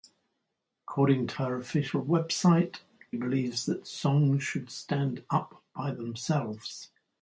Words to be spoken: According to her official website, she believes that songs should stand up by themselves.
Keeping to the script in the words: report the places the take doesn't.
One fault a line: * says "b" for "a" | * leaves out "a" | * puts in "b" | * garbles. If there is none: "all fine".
* leaves out "she"